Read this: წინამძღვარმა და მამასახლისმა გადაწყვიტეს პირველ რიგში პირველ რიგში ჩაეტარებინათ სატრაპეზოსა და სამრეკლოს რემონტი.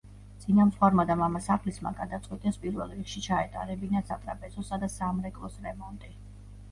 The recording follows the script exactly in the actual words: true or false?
false